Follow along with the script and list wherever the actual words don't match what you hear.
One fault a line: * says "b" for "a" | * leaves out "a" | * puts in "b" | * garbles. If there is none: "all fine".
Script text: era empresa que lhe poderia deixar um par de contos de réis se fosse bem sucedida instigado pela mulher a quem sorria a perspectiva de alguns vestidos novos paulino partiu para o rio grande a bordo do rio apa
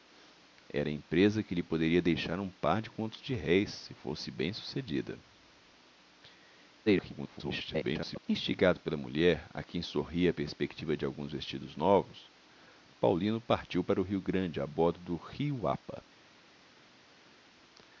* garbles